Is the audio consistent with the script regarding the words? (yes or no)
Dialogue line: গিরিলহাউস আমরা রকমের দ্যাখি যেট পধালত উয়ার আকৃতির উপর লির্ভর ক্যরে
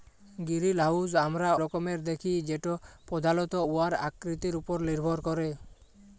yes